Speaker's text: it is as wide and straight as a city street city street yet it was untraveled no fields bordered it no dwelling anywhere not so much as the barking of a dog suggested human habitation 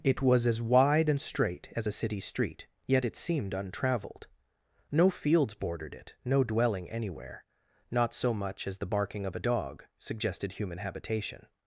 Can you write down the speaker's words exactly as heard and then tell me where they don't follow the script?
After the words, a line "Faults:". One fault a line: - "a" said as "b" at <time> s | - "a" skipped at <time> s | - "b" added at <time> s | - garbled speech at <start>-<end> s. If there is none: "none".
it was as wide and straight as a city street yet it seemed untraveled no fields bordered it no dwelling anywhere not so much as the barking of a dog suggested human habitation
Faults:
- "is" said as "was" at 0.2 s
- "city street" skipped at 2.7 s
- "was" said as "seemed" at 3.2 s